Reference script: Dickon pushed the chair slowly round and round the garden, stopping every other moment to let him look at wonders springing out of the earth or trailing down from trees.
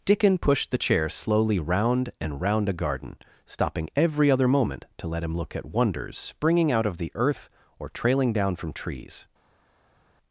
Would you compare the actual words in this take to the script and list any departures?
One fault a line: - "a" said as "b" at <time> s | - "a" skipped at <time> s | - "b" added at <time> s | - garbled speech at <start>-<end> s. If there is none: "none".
- "the" said as "a" at 2.7 s